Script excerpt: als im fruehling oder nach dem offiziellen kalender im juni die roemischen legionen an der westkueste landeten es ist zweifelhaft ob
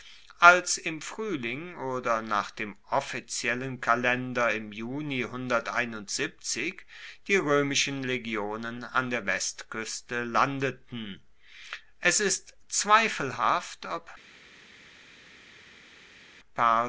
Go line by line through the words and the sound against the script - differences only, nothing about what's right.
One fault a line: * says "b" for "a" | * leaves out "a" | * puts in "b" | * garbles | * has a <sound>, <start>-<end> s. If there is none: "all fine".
all fine